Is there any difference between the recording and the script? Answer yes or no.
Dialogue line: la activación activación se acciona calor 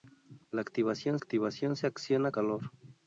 no